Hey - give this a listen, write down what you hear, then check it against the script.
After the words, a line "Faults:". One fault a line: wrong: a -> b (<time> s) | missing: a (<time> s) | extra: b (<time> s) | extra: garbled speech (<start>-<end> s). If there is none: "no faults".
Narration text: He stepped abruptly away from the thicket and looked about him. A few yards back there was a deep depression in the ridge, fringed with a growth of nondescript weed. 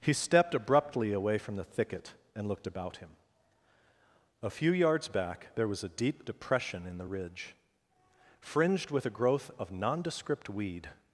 He stepped abruptly away from the thicket and looked about him. A few yards back there was a deep depression in the ridge, fringed with a growth of nondescript weed.
Faults:
no faults